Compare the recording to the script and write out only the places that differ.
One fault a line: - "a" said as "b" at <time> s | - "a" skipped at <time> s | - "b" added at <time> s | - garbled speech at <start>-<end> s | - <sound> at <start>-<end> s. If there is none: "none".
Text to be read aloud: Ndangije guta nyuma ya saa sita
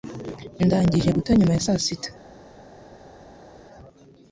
none